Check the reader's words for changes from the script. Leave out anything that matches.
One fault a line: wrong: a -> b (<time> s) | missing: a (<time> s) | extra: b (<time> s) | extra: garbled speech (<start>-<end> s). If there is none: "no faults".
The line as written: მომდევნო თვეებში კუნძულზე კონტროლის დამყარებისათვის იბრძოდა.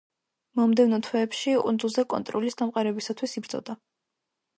no faults